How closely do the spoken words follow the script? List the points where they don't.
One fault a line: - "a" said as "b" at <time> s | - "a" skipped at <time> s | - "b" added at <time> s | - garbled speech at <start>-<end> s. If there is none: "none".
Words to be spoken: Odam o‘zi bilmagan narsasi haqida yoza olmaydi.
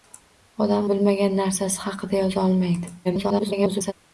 - "o‘zi" skipped at 0.9 s
- garbled speech at 3.0-3.9 s